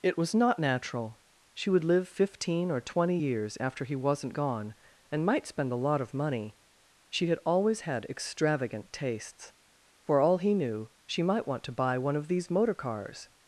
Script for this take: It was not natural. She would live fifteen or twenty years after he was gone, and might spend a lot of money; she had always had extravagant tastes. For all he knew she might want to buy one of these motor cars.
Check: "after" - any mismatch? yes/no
no